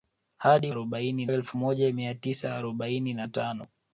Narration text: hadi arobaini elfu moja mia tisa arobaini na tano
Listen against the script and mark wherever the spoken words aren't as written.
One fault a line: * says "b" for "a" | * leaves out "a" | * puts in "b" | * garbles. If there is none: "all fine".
all fine